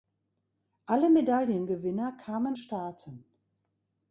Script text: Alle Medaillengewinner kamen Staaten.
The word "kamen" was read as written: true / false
true